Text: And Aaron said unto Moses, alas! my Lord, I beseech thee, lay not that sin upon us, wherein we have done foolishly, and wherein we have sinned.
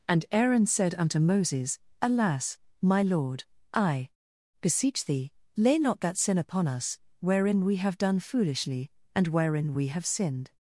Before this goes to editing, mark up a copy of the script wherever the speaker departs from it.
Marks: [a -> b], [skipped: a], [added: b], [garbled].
And Aaron said unto Moses, alas! my Lord, I beseech thee, lay not that sin upon us, wherein we have done foolishly, and wherein we have sinned.